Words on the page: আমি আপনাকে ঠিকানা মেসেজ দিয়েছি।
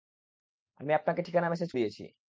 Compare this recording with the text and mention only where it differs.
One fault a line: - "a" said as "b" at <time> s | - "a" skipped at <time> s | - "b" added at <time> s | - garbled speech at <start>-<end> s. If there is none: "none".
none